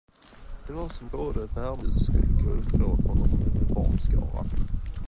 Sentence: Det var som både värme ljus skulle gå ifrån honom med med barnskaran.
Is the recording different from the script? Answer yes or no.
no